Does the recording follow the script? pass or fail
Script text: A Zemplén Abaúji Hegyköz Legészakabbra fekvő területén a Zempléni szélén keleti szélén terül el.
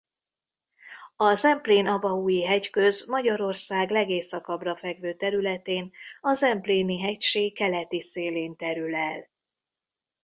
fail